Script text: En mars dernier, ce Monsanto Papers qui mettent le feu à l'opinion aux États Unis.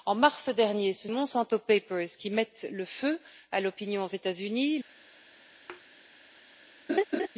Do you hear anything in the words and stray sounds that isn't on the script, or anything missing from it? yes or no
yes